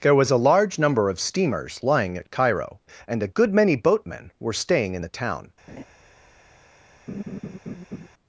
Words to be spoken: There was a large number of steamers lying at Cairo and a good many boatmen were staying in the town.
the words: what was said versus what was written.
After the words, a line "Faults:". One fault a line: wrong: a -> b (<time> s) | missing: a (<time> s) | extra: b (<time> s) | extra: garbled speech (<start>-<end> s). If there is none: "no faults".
There was a large number of steamers lying at Cairo and a good many boatmen were staying in the town.
Faults:
no faults